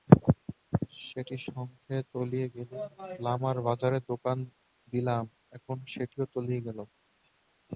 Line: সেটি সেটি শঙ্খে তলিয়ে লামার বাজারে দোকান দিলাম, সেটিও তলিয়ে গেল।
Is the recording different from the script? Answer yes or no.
yes